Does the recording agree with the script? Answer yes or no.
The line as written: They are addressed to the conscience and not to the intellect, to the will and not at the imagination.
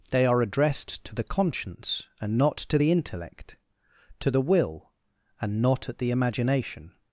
yes